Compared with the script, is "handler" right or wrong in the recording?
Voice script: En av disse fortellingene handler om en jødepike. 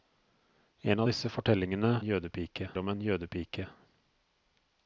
wrong